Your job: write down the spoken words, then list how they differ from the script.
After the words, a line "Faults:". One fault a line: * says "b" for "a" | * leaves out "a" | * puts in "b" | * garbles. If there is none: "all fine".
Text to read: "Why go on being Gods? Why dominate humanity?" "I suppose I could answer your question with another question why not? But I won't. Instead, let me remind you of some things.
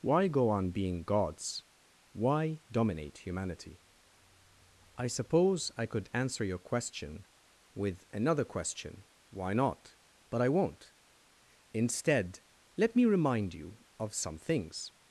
"Why go on being Gods? Why dominate humanity?" "I suppose I could answer your question with another question why not? But I won't. Instead, let me remind you of some things.
Faults:
all fine